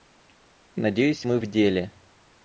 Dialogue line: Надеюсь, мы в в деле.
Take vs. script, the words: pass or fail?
fail